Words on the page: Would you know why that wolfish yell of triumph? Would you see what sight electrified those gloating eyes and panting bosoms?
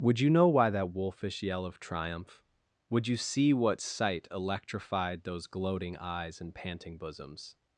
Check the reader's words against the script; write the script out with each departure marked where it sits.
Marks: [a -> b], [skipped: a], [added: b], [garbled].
Would you know why that wolfish yell of triumph? Would you see what sight electrified those gloating eyes and panting bosoms?